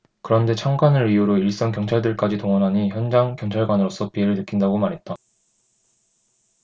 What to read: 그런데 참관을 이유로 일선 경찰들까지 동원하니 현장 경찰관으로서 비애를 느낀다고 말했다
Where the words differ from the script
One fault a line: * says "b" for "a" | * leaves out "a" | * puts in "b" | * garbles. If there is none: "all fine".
all fine